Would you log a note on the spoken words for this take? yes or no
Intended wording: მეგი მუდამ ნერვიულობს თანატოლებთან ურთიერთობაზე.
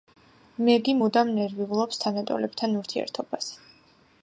no